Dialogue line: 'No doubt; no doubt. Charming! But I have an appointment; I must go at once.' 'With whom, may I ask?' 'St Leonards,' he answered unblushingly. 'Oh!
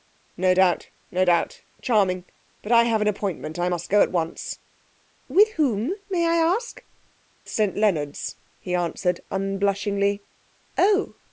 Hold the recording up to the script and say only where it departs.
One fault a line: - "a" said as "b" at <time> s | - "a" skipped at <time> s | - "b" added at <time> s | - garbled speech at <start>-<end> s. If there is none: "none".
none